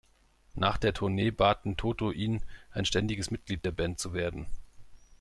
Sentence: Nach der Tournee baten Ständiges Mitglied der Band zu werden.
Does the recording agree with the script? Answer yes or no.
no